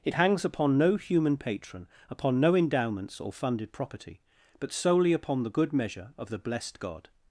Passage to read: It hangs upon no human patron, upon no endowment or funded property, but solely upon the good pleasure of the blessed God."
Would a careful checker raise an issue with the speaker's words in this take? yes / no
yes